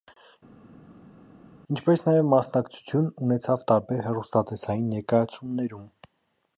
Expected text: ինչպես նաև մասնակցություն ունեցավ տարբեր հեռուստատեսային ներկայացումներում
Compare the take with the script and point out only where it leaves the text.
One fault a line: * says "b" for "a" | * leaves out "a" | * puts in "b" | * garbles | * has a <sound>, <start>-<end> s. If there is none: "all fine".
all fine